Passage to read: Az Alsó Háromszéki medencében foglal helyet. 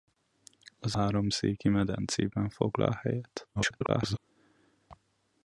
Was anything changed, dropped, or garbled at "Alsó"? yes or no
yes